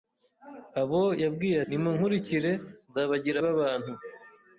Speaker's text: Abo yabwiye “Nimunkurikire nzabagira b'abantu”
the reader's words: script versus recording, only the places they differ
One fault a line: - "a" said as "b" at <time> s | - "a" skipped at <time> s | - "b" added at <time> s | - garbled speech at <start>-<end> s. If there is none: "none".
none